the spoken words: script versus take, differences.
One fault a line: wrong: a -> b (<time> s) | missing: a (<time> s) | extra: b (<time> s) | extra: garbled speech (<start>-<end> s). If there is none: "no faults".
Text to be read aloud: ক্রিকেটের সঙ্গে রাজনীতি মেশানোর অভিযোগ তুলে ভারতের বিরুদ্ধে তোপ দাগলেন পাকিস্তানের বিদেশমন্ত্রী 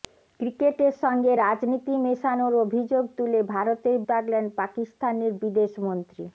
missing: বিরুদ্ধে তোপ (4.0 s)